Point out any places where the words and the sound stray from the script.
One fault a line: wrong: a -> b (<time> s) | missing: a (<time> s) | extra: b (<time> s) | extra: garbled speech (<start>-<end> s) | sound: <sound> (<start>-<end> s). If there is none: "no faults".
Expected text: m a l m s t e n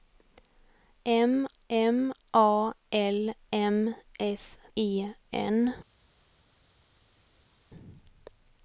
extra: m (1.7 s)
missing: t (4.6 s)